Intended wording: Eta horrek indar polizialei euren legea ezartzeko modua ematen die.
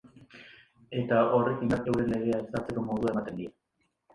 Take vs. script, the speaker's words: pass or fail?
fail